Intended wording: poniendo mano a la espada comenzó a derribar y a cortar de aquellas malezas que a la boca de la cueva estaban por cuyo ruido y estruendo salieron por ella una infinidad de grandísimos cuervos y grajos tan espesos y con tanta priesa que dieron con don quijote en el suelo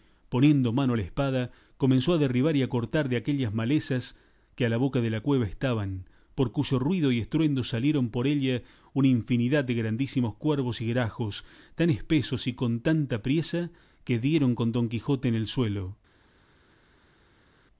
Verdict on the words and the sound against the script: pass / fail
pass